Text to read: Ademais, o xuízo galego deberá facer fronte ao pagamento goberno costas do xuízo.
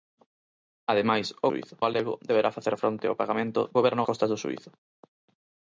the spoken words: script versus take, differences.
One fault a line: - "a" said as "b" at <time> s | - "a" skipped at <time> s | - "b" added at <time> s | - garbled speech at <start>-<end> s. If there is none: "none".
none